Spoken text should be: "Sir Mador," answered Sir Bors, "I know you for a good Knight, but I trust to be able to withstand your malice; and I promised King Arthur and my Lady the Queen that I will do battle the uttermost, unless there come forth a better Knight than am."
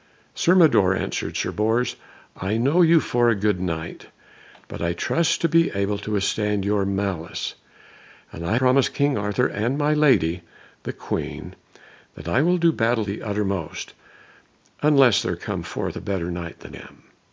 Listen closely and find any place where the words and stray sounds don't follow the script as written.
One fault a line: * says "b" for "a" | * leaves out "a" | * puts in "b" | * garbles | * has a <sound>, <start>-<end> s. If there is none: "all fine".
all fine